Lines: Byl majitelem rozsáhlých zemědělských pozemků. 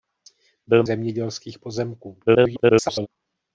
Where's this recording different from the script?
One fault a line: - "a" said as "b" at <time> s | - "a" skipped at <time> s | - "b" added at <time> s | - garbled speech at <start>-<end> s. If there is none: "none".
- "majitelem rozsáhlých" skipped at 0.8 s
- garbled speech at 2.3-3.1 s